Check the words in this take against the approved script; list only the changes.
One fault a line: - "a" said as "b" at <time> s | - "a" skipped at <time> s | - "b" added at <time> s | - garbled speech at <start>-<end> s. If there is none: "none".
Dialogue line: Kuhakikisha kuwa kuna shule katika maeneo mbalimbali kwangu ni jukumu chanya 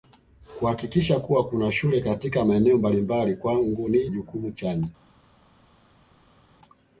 none